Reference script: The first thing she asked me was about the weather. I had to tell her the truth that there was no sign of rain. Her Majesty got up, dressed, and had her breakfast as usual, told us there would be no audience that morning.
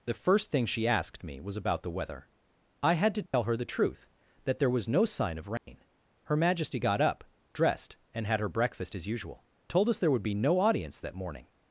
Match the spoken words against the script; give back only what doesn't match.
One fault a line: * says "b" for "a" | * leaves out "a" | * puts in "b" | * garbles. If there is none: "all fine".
all fine